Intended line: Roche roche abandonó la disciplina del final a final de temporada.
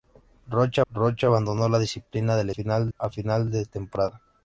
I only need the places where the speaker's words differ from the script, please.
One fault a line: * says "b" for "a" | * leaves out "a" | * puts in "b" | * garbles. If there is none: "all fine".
all fine